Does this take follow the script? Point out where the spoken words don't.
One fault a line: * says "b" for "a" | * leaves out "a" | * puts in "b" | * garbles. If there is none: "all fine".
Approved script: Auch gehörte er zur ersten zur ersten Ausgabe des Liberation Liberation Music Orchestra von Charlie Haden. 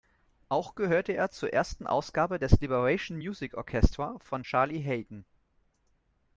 * leaves out "zur ersten"
* leaves out "Liberation"